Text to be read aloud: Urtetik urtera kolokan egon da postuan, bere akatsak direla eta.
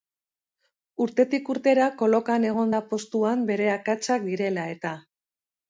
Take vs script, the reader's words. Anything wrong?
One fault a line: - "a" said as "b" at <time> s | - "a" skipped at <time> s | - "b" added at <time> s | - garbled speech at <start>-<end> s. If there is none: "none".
none